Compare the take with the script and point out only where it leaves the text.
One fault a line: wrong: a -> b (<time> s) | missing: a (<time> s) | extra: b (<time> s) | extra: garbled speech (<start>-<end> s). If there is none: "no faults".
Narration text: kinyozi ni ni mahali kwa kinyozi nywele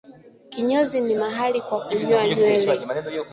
missing: ni (1.1 s)
wrong: kinyozi -> kunyoa (1.9 s)